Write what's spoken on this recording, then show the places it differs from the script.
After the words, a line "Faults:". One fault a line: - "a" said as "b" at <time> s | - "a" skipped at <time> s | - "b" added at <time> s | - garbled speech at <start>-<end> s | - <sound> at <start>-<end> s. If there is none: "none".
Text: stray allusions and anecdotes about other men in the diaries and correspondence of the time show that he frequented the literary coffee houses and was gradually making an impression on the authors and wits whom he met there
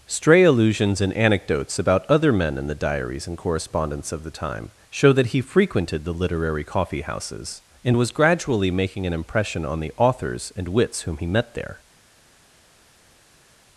stray allusions and anecdotes about other men in the diaries and correspondence of the time show that he frequented the literary coffee houses and was gradually making an impression on the authors and wits whom he met there
Faults:
none